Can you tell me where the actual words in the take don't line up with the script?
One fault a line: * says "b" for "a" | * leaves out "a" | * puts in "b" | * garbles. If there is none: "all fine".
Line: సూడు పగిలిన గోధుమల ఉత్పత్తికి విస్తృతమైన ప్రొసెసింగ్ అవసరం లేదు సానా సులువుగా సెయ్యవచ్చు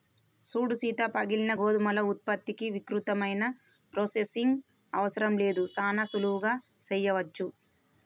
* puts in "సీత"